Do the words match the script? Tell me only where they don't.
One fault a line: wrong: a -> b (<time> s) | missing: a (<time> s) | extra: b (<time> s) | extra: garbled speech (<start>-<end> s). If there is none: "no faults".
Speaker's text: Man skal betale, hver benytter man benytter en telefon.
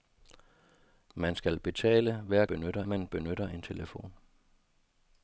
no faults